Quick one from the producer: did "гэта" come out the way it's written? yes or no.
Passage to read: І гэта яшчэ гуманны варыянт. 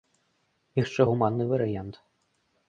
no